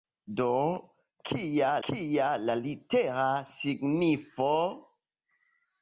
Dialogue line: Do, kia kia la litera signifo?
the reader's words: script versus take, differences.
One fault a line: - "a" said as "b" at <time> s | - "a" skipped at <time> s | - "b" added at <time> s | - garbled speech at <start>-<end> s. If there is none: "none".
none